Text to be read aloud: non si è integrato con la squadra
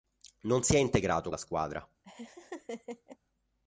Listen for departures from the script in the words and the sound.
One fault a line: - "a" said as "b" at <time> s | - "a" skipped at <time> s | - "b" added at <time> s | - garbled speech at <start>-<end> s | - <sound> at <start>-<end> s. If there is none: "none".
- "con" skipped at 1.3 s
- laugh at 2.0-3.2 s